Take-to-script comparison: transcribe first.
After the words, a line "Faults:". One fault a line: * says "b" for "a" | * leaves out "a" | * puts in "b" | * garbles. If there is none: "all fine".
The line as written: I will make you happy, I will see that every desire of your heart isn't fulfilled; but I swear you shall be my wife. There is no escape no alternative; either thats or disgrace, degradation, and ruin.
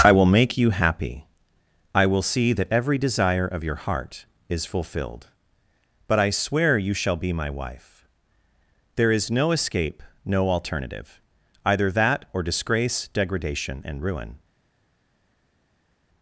I will make you happy, I will see that every desire of your heart is fulfilled; but I swear you shall be my wife. There is no escape no alternative; either that or disgrace, degradation, and ruin.
Faults:
* says "is" for "isn't"
* says "that" for "thats"